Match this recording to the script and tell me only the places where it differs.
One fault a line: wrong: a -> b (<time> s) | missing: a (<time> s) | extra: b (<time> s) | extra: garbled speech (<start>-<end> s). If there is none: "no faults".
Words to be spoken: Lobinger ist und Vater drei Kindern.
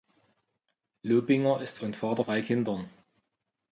no faults